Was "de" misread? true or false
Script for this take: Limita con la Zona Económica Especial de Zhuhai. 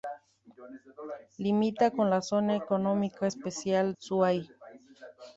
true